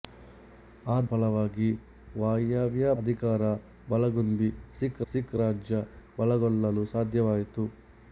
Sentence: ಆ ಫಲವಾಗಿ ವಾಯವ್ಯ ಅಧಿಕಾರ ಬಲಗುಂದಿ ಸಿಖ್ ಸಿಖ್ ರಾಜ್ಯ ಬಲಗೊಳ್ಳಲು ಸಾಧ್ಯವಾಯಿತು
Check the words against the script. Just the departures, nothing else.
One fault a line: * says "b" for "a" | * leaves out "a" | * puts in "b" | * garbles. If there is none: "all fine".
all fine